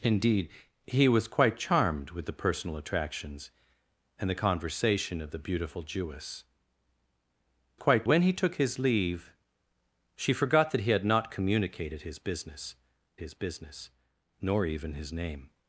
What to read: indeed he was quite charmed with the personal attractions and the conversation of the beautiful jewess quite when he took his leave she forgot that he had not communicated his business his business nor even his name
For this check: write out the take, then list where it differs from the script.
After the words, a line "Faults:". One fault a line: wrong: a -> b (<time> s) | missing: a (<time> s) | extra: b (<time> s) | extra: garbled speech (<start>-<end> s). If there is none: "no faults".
indeed he was quite charmed with the personal attractions and the conversation of the beautiful jewess quite when he took his leave she forgot that he had not communicated his business his business nor even his name
Faults:
no faults